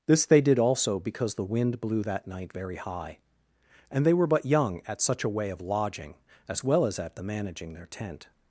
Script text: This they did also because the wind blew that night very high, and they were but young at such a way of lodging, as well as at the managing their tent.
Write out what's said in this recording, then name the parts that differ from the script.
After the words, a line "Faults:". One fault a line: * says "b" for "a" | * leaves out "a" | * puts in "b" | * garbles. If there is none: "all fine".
This they did also because the wind blew that night very high, and they were but young at such a way of lodging, as well as at the managing their tent.
Faults:
all fine